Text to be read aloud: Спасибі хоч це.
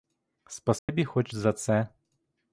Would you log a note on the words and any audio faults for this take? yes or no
yes